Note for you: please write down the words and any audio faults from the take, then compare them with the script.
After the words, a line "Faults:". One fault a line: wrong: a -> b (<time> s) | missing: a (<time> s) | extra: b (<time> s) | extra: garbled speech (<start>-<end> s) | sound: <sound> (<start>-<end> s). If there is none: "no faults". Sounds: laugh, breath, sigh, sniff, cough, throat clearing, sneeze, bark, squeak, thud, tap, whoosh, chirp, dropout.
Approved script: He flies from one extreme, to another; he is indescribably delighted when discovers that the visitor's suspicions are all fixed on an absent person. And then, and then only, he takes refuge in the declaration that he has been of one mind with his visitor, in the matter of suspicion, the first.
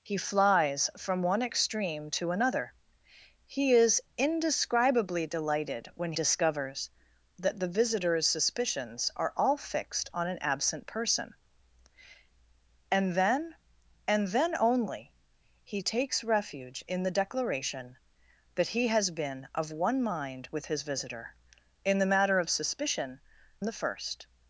He flies from one extreme, to another; he is indescribably delighted when discovers that the visitor's suspicions are all fixed on an absent person. And then, and then only, he takes refuge in the declaration that he has been of one mind with his visitor, in the matter of suspicion, the first.
Faults:
no faults